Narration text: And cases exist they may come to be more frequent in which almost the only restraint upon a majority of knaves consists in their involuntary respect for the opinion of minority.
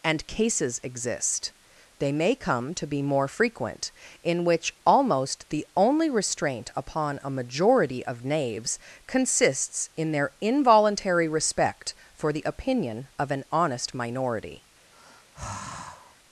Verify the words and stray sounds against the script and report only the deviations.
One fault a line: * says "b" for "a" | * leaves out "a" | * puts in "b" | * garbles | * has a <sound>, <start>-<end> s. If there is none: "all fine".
* puts in "an honest"
* has a sigh, 14.9-16.2 s